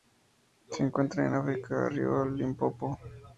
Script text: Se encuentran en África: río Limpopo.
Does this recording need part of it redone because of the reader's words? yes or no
no